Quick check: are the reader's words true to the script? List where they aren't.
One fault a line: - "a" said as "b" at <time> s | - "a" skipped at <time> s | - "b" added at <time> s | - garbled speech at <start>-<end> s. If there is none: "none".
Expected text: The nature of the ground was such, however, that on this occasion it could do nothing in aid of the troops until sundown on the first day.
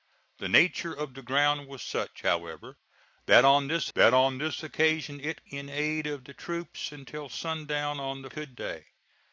- "occasion it could do nothing" said as "that on this occasion it" at 3.9 s
- "first" said as "could" at 8.3 s